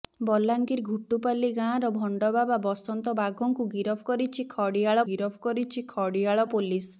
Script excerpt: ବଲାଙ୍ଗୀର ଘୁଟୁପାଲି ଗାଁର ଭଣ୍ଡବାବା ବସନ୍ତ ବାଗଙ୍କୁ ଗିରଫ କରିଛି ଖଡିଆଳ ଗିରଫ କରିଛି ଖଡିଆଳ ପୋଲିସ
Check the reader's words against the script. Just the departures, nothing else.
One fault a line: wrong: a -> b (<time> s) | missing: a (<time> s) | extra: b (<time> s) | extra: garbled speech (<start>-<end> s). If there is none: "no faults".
no faults